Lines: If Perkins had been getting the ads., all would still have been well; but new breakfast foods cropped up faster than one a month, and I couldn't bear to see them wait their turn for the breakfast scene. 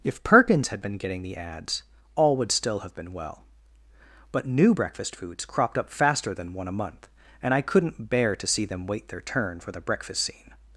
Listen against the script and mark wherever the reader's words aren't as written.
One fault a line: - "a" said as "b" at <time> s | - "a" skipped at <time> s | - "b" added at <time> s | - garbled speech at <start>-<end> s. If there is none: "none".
none